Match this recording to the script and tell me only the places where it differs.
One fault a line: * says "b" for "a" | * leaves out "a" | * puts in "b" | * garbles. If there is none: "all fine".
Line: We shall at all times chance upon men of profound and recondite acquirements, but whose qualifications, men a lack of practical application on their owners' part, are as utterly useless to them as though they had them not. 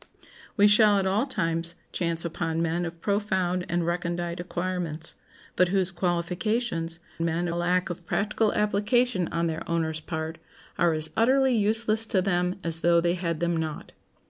all fine